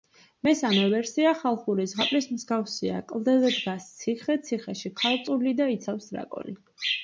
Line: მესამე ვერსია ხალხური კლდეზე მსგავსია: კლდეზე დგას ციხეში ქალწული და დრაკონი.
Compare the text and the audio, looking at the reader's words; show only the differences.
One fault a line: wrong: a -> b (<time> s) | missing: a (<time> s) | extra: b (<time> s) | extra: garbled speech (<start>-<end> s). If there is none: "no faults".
wrong: კლდეზე -> ზღაპრის (1.9 s)
extra: ციხე (4.0 s)
extra: იცავს (5.8 s)